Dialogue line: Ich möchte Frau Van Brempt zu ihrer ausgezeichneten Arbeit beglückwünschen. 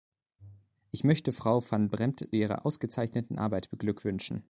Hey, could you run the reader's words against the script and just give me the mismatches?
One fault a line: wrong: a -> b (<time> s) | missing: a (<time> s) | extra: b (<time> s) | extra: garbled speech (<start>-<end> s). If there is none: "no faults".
missing: zu (2.4 s)